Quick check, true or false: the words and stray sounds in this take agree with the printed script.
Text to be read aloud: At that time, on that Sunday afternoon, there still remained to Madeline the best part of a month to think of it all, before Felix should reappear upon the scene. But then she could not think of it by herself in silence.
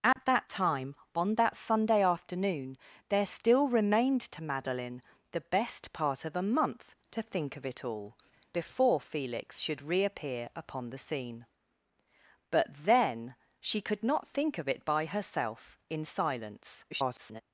false